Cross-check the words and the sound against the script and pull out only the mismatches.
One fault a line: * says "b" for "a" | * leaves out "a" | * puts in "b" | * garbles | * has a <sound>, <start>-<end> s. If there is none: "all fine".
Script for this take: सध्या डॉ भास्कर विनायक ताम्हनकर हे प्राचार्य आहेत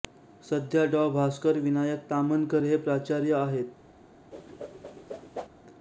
* has a whoosh, 4.3-5.5 s